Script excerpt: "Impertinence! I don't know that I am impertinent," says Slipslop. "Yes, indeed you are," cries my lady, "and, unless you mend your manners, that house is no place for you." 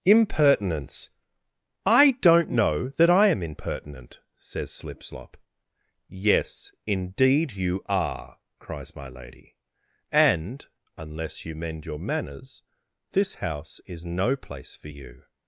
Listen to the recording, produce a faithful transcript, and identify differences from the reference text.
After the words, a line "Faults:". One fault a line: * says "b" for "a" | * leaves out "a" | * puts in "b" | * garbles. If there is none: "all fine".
"Impertinence! I don't know that I am impertinent," says Slipslop. "Yes, indeed you are," cries my lady, "and, unless you mend your manners, this house is no place for you."
Faults:
* says "this" for "that"